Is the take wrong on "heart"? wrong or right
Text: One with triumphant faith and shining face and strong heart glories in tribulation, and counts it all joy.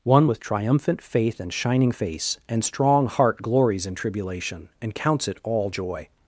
right